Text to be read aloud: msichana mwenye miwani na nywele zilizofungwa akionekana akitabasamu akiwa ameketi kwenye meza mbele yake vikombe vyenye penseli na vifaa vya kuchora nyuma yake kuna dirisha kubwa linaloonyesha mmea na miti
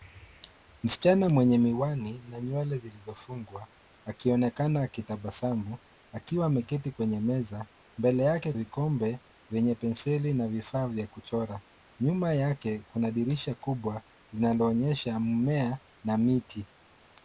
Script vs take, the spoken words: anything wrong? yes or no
no